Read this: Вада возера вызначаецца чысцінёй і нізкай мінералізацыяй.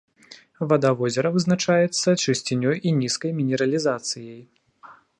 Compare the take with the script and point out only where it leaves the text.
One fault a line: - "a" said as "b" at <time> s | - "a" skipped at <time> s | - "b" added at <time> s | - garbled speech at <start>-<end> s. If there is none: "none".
none